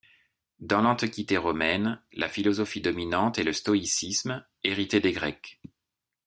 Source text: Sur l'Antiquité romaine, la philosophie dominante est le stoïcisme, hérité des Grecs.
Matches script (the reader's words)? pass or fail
fail